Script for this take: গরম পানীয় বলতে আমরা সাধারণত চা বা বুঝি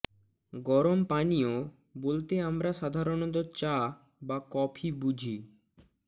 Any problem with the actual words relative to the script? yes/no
yes